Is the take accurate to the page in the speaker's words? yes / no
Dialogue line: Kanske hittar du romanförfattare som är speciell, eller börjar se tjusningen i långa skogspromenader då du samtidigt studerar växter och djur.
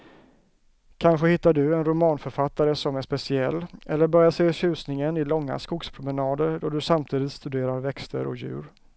no